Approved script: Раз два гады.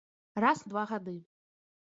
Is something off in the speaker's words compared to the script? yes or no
no